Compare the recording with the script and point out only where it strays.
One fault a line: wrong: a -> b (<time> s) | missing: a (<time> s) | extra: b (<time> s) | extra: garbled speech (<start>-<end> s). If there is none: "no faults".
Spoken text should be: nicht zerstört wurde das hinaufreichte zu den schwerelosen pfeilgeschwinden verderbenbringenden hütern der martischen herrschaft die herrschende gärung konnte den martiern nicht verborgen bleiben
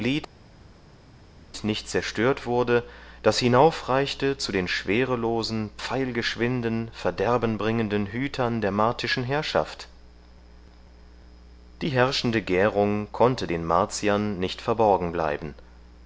no faults